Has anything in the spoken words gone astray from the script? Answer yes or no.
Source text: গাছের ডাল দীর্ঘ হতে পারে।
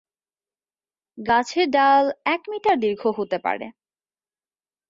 yes